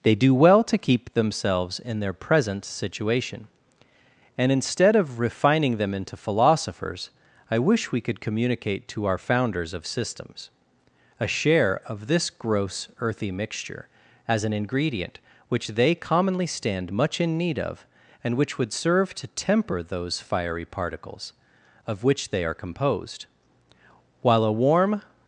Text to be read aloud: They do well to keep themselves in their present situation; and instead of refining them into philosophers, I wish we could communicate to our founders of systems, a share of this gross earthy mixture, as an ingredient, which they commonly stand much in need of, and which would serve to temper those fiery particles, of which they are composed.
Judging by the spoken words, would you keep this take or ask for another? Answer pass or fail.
fail